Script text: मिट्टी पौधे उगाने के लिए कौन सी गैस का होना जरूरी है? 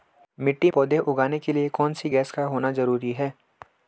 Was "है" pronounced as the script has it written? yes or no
yes